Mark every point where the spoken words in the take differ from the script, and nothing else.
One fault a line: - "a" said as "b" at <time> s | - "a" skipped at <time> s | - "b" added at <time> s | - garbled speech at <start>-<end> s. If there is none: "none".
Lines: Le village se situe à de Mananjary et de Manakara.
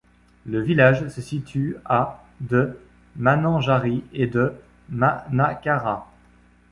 none